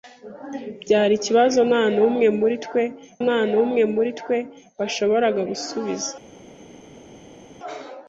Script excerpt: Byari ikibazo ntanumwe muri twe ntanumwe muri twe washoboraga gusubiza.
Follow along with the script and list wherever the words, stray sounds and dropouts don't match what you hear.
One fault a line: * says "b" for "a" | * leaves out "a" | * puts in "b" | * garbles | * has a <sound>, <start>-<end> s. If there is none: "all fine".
all fine